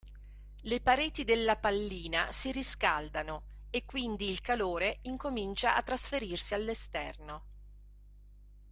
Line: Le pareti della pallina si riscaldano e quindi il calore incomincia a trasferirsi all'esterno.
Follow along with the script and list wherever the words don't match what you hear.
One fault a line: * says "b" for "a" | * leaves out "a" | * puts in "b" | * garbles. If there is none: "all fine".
all fine